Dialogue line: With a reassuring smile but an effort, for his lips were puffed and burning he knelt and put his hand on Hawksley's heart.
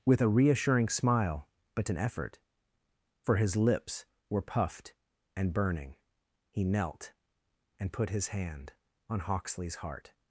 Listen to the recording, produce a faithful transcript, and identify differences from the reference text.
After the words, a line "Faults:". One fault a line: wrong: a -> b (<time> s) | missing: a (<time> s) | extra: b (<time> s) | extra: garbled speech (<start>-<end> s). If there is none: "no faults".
With a reassuring smile but an effort, for his lips were puffed and burning he knelt and put his hand on Hawksley's heart.
Faults:
no faults